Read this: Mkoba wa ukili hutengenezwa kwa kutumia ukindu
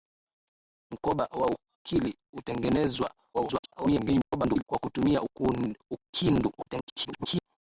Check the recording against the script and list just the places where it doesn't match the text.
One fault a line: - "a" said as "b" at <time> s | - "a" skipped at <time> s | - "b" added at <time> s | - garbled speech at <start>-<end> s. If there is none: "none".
- garbled speech at 3.3-4.6 s
- garbled speech at 6.6-7.5 s